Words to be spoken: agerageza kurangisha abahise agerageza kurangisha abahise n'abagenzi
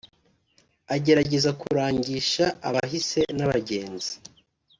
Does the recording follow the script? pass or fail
fail